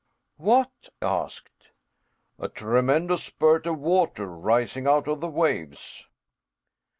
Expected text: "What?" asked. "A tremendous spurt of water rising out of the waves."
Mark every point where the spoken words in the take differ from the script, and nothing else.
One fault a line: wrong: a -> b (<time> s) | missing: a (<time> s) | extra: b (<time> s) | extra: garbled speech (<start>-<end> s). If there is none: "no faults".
no faults